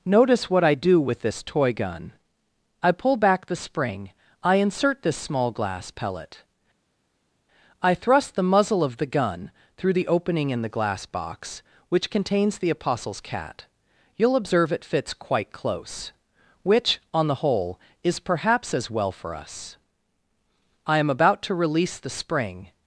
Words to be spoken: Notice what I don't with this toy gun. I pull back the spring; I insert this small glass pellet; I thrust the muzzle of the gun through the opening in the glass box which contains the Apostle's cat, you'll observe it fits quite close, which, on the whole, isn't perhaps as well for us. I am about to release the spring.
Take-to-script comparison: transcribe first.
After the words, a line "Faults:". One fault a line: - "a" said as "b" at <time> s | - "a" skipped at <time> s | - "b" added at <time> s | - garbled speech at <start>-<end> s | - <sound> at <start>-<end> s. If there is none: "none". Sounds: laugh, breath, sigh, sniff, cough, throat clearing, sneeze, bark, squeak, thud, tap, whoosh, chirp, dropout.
Notice what I do with this toy gun. I pull back the spring; I insert this small glass pellet; I thrust the muzzle of the gun through the opening in the glass box which contains the Apostle's cat, you'll observe it fits quite close, which, on the whole, is perhaps as well for us. I am about to release the spring.
Faults:
- "don't" said as "do" at 0.7 s
- "isn't" said as "is" at 18.0 s